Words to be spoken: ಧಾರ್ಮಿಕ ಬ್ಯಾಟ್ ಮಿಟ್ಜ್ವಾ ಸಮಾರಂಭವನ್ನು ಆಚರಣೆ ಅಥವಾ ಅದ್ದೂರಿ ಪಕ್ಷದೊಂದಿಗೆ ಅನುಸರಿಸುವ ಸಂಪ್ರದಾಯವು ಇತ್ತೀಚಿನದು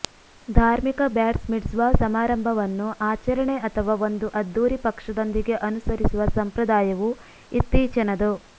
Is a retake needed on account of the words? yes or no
yes